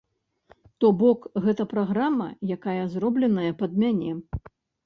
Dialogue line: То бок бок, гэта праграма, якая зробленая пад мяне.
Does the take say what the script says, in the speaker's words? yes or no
no